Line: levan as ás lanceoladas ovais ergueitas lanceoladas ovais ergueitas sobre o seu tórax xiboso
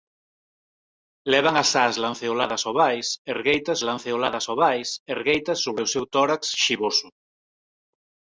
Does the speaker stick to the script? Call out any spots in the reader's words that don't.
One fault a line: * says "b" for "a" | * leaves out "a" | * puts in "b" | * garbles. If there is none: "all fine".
all fine